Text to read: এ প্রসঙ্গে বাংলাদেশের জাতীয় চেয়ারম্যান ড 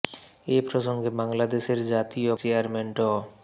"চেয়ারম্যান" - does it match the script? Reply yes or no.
yes